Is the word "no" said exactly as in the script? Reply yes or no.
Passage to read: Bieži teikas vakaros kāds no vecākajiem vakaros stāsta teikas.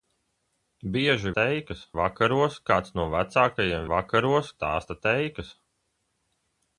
yes